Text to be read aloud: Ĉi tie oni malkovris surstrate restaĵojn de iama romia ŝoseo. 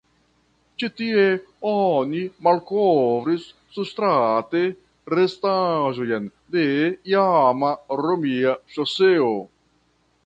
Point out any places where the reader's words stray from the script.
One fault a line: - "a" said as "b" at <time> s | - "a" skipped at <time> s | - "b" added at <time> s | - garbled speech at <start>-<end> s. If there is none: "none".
none